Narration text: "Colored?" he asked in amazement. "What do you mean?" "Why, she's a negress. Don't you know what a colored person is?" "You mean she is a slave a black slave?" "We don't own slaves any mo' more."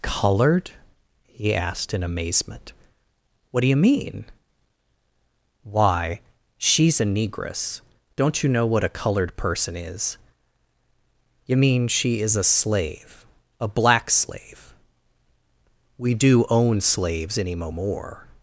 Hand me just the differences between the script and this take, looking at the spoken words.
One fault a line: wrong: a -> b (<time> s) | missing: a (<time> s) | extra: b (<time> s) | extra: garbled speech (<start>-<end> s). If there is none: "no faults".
wrong: don't -> do (16.1 s)